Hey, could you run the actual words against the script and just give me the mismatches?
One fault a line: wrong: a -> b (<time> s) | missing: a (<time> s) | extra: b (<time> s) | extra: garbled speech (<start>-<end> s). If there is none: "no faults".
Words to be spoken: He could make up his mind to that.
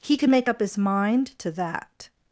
no faults